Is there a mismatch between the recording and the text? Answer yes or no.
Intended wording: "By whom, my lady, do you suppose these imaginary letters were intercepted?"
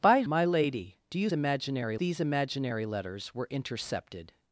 yes